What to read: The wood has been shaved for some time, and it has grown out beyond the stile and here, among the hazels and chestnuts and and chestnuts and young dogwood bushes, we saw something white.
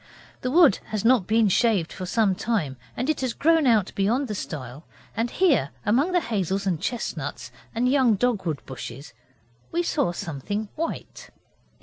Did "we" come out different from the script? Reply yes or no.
no